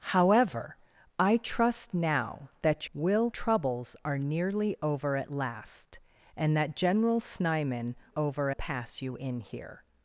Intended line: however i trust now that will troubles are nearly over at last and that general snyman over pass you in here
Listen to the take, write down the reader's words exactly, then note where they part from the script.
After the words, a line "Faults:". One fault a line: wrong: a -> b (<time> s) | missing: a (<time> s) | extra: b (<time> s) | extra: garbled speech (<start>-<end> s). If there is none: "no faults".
however i trust now that will troubles are nearly over at last and that general snyman over pass you in here
Faults:
no faults